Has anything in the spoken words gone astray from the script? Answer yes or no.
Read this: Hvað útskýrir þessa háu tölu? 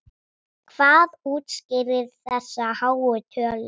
no